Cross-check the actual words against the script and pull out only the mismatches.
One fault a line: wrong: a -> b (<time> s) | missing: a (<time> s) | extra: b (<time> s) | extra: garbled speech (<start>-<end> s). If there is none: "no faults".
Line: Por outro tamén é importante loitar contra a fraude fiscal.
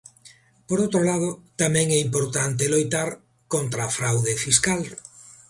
extra: lado (1.1 s)